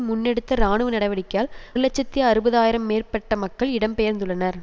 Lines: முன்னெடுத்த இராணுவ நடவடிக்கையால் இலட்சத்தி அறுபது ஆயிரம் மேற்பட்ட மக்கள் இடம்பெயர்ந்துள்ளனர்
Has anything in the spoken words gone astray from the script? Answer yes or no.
no